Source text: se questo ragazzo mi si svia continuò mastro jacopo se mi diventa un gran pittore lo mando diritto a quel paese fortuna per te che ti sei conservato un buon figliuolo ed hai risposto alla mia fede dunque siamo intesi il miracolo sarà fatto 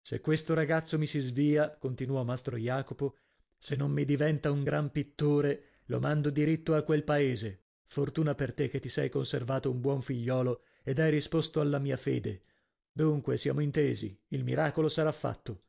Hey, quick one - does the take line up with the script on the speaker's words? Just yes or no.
no